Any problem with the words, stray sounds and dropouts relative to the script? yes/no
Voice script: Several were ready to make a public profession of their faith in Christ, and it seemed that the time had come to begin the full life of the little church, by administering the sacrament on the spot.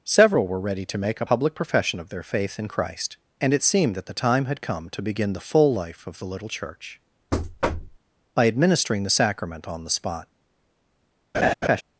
yes